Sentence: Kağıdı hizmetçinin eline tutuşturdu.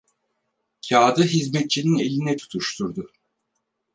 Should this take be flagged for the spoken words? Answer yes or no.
no